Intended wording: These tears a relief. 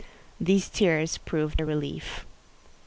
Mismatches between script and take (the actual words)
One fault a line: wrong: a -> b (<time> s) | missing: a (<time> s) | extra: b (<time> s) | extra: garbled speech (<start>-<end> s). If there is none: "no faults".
extra: proved (1.2 s)